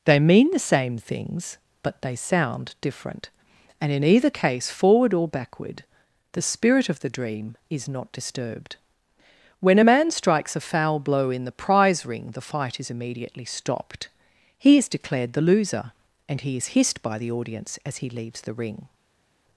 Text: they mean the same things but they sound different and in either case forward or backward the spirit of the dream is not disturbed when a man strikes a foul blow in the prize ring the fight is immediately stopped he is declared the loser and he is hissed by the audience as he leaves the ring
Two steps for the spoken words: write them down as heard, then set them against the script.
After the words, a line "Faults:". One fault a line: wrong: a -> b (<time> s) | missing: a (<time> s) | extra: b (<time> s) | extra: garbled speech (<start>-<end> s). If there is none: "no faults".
they mean the same things but they sound different and in either case forward or backward the spirit of the dream is not disturbed when a man strikes a foul blow in the prize ring the fight is immediately stopped he is declared the loser and he is hissed by the audience as he leaves the ring
Faults:
no faults